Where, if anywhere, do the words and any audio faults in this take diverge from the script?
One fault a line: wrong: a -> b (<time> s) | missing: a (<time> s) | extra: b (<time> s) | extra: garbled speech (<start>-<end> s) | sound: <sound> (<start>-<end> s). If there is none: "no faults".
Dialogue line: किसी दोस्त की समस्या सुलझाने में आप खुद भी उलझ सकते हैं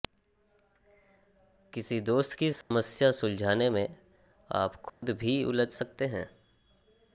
sound: dropout (2.6-2.7 s)
sound: dropout (4.9-5.0 s)